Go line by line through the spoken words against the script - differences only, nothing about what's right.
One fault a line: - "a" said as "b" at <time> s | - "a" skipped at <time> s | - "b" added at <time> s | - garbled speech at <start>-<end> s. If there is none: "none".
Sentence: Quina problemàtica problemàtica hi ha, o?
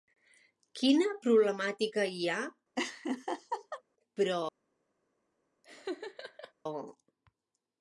- "problemàtica" skipped at 2.1 s
- "o" said as "però" at 4.2 s